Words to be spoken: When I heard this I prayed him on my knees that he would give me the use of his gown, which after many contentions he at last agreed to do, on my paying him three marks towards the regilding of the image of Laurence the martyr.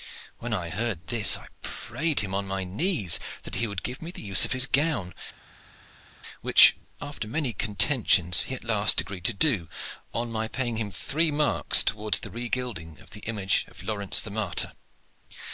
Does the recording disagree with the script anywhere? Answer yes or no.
no